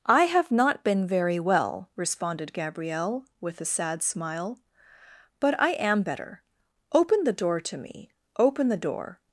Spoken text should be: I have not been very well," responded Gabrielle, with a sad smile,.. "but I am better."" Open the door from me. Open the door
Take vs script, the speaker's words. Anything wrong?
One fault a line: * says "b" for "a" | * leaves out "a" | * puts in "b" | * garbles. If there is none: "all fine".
* says "to" for "from"